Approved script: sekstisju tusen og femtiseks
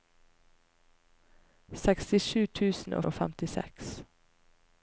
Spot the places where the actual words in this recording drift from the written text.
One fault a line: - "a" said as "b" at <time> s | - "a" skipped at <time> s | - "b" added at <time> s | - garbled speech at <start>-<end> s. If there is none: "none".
- "og" added at 3.0 s